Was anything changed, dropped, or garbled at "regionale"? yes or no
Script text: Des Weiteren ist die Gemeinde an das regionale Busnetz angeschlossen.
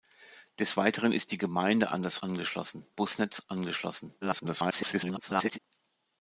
yes